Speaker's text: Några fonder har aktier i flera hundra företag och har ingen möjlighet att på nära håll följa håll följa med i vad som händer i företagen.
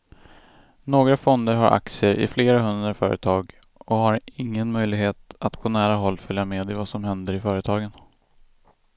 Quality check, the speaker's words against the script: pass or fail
fail